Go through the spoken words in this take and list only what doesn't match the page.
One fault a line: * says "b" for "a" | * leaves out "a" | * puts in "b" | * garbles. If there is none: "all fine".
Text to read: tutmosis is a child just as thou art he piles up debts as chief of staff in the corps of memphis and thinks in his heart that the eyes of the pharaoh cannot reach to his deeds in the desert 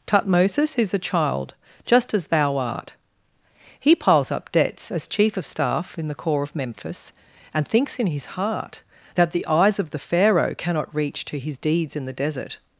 all fine